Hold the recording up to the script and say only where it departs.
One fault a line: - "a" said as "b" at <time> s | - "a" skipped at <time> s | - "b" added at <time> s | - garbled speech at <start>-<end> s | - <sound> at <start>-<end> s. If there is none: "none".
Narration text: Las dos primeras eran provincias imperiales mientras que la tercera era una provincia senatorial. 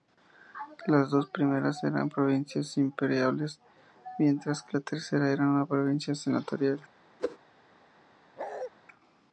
- whoosh at 7.2-7.4 s
- bark at 8.4-8.7 s